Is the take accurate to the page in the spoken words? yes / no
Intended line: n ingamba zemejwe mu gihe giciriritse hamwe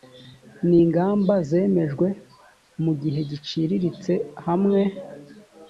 yes